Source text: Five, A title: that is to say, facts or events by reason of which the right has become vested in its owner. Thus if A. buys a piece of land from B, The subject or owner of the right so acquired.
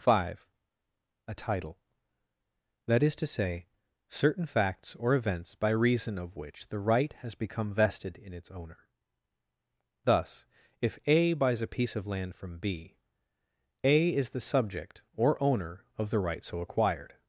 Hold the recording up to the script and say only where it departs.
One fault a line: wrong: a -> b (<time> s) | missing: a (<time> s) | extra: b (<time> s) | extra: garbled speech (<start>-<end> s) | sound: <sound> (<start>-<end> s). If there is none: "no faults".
extra: certain (4.1 s)
extra: A is (13.8 s)